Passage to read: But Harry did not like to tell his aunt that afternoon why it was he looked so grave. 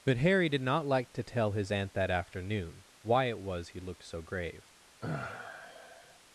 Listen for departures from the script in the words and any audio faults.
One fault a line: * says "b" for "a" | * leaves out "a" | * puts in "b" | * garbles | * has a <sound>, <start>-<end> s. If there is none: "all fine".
* has a sigh, 5.0-6.2 s